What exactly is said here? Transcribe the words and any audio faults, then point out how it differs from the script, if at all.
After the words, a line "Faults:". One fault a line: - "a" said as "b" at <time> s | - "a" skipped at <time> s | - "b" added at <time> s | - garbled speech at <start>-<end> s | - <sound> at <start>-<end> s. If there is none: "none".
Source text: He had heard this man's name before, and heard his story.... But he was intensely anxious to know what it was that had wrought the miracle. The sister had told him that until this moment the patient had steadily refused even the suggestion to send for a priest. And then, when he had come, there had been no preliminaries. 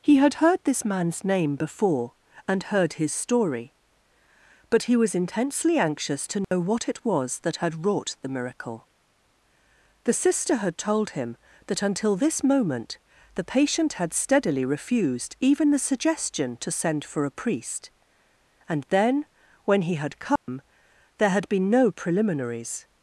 He had heard this man's name before, and heard his story.... But he was intensely anxious to know what it was that had wrought the miracle. The sister had told him that until this moment the patient had steadily refused even the suggestion to send for a priest. And then, when he had come, there had been no preliminaries.
Faults:
- dropout at 6.4-6.5 s
- dropout at 20.4-20.5 s